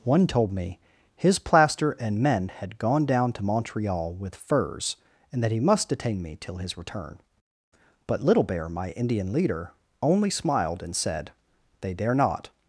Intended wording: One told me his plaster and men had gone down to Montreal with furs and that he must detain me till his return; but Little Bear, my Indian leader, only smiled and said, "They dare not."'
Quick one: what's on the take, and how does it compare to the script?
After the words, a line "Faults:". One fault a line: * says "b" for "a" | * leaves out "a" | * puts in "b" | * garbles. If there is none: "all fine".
One told me his plaster and men had gone down to Montreal with furs and that he must detain me till his return; but Little Bear, my Indian leader, only smiled and said, "They dare not."'
Faults:
all fine